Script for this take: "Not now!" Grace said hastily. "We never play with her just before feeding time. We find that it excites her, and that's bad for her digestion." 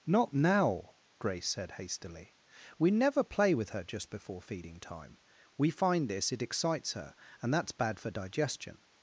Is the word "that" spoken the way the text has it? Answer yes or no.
no